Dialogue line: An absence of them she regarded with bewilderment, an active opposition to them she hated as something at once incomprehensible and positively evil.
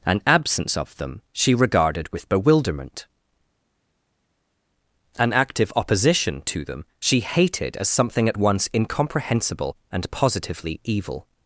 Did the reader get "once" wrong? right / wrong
right